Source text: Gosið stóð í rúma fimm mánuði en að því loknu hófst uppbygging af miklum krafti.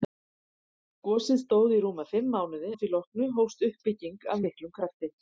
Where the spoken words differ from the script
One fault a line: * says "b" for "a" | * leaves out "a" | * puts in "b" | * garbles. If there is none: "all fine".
* leaves out "en"